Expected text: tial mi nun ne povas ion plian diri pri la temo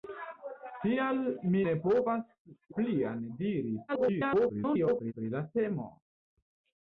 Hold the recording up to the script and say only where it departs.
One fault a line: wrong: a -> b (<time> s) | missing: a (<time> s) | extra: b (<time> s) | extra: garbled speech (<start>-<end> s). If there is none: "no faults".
missing: nun (1.6 s)
missing: ion (2.2 s)
extra: garbled speech (3.9-5.1 s)